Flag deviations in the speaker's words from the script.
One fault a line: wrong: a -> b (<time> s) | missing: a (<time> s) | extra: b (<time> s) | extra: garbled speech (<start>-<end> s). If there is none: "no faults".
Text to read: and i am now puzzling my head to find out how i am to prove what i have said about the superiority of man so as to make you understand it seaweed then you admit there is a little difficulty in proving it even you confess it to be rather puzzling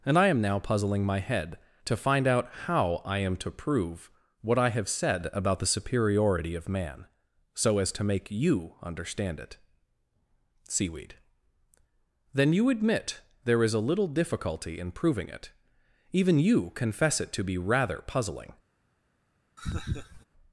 no faults